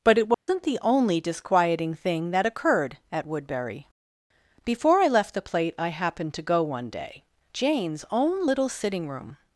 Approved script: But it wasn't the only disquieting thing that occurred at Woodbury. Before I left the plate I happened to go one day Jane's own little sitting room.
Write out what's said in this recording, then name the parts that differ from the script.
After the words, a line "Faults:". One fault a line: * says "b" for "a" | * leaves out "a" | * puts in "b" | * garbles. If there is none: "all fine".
But it wasn't the only disquieting thing that occurred at Woodbury. Before I left the plate I happened to go one day Jane's own little sitting room.
Faults:
all fine